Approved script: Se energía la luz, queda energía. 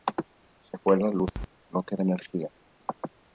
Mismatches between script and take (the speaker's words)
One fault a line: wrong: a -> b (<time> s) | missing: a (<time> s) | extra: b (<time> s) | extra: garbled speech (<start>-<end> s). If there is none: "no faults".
wrong: energía -> fue (0.8 s)
extra: no (1.7 s)